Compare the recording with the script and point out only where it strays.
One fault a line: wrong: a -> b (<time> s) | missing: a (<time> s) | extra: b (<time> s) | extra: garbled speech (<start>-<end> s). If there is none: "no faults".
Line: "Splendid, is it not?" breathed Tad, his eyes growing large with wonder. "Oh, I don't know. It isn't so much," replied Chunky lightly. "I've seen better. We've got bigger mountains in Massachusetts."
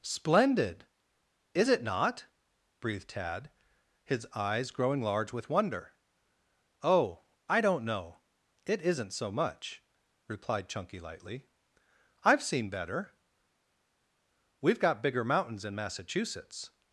no faults